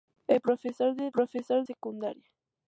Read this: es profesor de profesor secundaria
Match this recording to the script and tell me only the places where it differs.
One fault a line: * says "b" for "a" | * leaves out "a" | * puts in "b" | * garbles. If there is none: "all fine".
all fine